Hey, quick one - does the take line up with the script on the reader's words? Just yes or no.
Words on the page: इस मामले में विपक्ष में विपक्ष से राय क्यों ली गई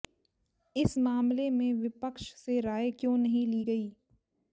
no